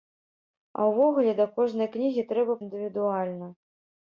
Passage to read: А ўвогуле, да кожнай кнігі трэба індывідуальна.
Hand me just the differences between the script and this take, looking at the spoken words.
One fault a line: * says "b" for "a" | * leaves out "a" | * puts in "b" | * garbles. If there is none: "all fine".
all fine